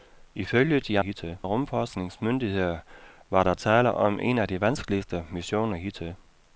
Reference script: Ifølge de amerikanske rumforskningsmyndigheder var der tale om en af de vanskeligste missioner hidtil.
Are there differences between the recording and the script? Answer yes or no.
yes